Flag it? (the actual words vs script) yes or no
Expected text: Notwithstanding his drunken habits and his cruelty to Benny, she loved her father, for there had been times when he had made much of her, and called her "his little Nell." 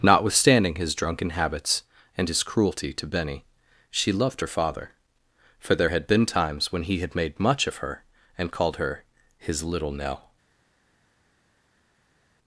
no